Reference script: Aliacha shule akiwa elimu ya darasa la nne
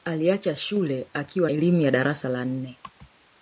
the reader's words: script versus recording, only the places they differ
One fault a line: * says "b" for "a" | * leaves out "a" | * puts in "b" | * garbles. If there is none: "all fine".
all fine